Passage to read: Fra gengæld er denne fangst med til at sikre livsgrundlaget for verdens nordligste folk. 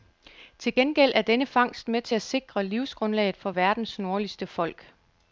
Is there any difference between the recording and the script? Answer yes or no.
yes